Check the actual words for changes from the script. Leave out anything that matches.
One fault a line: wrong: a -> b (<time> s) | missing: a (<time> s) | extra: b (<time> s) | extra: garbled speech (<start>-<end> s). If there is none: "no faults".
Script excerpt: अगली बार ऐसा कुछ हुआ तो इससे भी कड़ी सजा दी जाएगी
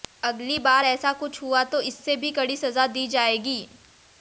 no faults